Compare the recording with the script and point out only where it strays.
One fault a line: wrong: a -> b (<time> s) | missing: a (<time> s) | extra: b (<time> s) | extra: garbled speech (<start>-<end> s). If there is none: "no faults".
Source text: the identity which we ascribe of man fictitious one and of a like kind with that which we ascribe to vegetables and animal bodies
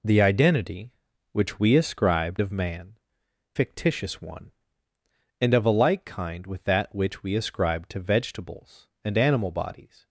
no faults